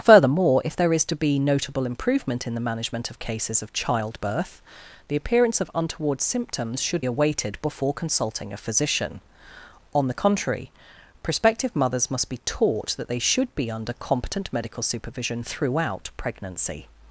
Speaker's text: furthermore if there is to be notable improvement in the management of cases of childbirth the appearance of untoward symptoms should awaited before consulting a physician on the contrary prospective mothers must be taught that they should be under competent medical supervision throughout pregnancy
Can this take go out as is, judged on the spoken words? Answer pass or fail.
pass